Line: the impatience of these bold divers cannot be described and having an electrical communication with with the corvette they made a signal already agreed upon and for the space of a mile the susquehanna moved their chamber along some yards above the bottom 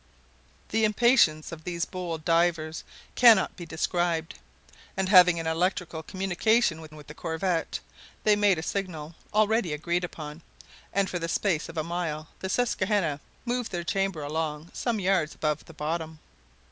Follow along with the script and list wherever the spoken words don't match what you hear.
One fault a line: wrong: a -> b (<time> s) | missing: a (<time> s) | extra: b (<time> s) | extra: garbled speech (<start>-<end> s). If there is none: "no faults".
no faults